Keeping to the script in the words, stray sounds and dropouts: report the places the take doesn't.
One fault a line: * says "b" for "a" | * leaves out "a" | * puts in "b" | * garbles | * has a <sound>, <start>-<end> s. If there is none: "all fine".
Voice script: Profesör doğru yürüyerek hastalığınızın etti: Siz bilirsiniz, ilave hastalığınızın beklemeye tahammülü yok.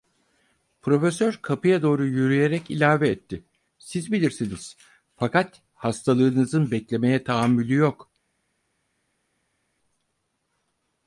* puts in "kapıya"
* says "ilave" for "hastalığınızın"
* says "fakat" for "ilave"